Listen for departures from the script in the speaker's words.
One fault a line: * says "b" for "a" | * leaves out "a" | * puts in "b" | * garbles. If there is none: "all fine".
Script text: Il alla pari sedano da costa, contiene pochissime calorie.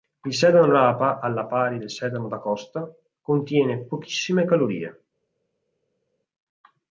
* puts in "sedano rapa"
* puts in "del"